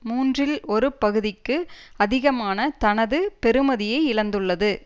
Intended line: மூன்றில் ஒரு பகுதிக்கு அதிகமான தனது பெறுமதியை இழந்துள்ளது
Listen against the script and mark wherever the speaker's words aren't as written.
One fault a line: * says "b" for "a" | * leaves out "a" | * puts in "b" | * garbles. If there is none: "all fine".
all fine